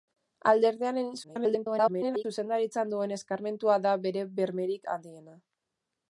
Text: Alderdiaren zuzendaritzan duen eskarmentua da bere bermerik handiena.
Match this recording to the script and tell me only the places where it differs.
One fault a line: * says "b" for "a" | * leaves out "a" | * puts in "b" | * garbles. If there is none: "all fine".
* garbles